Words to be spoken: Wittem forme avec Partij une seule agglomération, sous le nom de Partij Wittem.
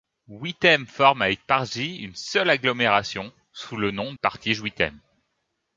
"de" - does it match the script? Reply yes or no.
no